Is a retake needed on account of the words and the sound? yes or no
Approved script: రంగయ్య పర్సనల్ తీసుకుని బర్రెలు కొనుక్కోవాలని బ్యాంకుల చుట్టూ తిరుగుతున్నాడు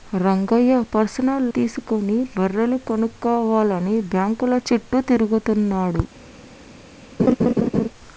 yes